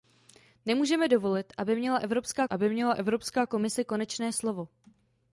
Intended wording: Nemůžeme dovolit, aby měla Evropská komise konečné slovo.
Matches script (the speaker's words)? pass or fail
fail